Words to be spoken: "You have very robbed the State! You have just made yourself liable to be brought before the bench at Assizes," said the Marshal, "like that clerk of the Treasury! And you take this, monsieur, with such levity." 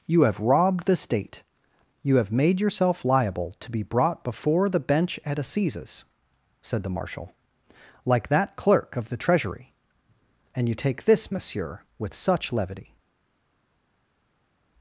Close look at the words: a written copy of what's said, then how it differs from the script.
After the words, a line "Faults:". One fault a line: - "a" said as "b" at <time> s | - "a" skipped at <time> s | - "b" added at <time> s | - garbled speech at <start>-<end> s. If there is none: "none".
"You have robbed the State! You have made yourself liable to be brought before the bench at Assizes," said the Marshal, "like that clerk of the Treasury! And you take this, monsieur, with such levity."
Faults:
- "very" skipped at 0.4 s
- "just" skipped at 2.3 s